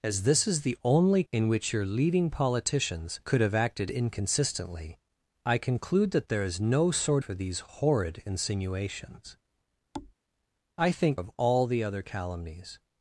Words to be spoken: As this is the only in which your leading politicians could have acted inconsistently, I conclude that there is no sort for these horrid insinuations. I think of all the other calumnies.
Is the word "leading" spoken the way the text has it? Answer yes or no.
yes